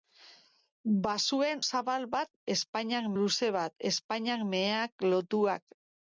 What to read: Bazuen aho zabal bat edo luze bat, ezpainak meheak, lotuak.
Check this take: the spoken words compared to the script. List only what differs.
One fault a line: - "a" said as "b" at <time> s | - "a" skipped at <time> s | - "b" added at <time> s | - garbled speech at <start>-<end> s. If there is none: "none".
- "aho" skipped at 1.6 s
- "edo" said as "ezpainak" at 2.6 s